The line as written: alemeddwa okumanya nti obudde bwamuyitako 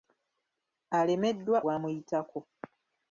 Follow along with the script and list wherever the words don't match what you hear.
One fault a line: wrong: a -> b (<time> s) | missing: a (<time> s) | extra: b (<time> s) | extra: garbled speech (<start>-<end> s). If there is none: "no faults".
missing: okumanya nti obudde (1.6 s)